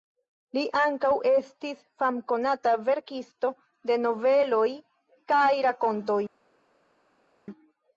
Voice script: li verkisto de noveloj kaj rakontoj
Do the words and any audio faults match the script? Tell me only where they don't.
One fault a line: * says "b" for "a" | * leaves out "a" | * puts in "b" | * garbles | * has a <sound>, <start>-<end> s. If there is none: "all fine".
* puts in "ankaŭ estis famkonata"